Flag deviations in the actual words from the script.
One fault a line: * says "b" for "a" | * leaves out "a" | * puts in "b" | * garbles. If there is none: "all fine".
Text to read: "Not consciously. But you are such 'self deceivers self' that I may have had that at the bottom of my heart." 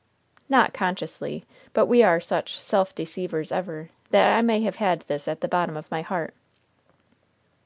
* says "we" for "you"
* says "ever" for "self"
* says "this" for "that"